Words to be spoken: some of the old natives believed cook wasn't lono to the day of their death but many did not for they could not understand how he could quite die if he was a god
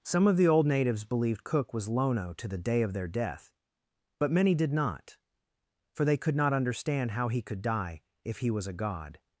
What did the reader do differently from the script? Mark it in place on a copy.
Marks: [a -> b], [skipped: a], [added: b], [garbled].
some of the old natives believed cook [wasn't -> was] lono to the day of their death but many did not for they could not understand how he could [skipped: quite] die if he was a god